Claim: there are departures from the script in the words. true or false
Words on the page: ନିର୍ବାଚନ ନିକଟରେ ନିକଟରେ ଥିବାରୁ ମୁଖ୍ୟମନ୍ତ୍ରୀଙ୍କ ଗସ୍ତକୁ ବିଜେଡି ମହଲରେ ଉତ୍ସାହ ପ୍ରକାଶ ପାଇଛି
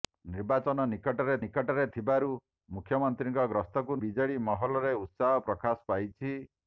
false